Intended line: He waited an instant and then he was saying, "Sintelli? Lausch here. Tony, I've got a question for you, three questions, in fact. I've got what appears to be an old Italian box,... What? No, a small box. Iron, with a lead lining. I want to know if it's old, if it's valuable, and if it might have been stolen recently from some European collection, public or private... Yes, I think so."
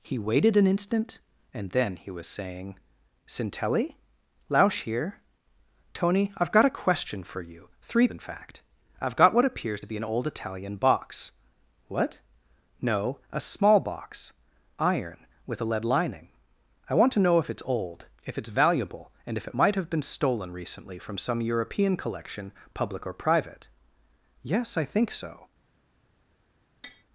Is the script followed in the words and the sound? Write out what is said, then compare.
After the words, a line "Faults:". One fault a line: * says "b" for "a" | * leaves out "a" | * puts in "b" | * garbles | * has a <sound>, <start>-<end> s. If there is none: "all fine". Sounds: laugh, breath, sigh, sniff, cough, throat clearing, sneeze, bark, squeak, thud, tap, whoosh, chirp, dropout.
He waited an instant and then he was saying, "Sintelli? Lausch here. Tony, I've got a question for you, three in fact. I've got what appears to be an old Italian box,... What? No, a small box. Iron, with a lead lining. I want to know if it's old, if it's valuable, and if it might have been stolen recently from some European collection, public or private... Yes, I think so."
Faults:
* leaves out "questions"
* has a tap, 26.8-27.0 s